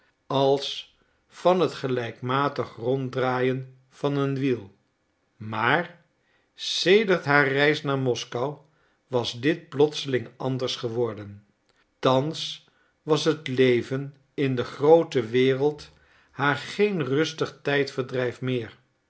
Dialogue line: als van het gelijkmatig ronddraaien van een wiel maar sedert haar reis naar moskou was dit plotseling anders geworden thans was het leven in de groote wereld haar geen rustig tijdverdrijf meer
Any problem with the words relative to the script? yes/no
no